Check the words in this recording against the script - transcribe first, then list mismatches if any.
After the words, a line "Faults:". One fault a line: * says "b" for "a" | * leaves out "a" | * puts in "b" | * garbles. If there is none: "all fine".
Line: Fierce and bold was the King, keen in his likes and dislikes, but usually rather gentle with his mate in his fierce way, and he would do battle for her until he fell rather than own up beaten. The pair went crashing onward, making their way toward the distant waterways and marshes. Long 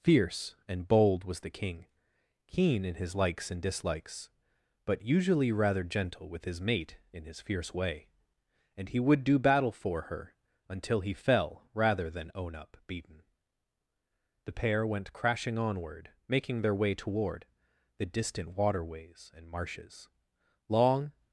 Fierce and bold was the King, keen in his likes and dislikes, but usually rather gentle with his mate in his fierce way, and he would do battle for her until he fell rather than own up beaten. The pair went crashing onward, making their way toward the distant waterways and marshes. Long
Faults:
all fine